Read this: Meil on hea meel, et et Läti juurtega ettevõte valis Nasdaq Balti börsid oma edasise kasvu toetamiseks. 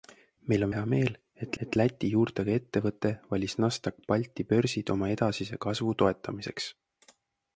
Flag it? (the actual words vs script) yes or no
no